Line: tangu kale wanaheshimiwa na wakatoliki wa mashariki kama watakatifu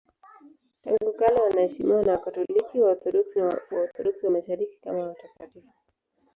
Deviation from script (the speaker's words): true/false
true